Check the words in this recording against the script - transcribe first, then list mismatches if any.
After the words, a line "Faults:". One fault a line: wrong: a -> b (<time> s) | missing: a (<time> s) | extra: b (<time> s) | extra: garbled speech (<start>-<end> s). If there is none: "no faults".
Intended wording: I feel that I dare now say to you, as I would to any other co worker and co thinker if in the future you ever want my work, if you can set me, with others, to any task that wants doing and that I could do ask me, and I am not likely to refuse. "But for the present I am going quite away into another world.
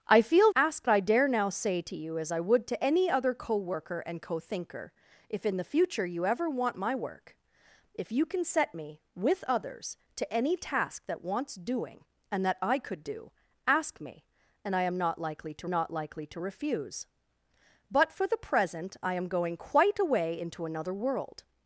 I feel ask I dare now say to you, as I would to any other co worker and co thinker if in the future you ever want my work, if you can set me, with others, to any task that wants doing and that I could do ask me, and I am not likely to not likely to refuse. "But for the present I am going quite away into another world.
Faults:
wrong: that -> ask (0.6 s)
extra: not likely to (15.7 s)